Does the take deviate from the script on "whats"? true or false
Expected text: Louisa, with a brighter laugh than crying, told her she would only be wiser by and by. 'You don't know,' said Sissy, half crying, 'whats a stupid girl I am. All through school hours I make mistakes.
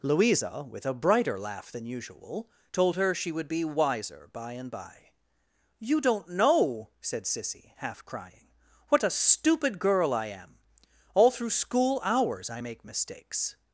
true